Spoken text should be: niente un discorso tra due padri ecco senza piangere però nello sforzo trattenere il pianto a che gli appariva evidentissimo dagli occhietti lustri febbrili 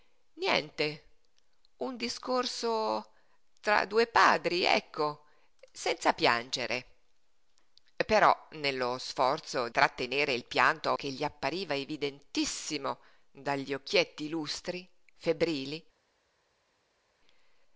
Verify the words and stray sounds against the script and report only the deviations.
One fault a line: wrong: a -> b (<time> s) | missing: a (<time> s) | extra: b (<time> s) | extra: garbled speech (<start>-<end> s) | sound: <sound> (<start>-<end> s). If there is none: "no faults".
no faults